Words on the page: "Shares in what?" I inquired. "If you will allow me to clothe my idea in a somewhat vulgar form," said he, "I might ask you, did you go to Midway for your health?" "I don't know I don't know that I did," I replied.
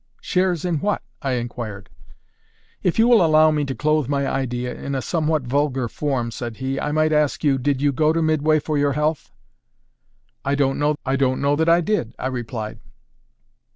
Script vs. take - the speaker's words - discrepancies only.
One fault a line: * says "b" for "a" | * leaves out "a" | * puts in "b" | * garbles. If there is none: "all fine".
all fine